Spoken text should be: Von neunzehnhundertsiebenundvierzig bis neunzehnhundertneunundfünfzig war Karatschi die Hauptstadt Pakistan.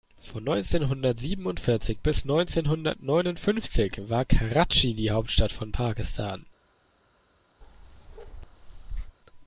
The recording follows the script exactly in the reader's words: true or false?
false